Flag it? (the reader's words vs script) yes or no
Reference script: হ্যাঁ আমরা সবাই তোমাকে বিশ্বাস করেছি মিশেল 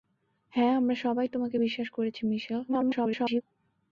yes